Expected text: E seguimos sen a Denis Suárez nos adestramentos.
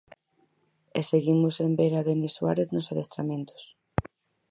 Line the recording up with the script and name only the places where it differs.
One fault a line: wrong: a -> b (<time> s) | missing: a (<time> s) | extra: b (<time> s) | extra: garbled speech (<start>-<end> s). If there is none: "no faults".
extra: ver (1.8 s)